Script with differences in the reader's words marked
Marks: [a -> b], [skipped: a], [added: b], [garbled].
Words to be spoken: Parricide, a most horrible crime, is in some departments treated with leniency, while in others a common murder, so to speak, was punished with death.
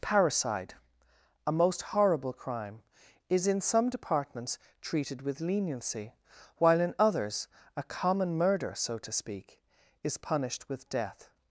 Parricide, a most horrible crime, is in some departments treated with leniency, while in others a common murder, so to speak, [was -> is] punished with death.